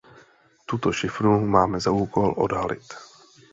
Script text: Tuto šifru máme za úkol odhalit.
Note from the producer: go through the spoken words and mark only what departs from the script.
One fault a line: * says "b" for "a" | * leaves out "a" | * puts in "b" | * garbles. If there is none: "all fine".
all fine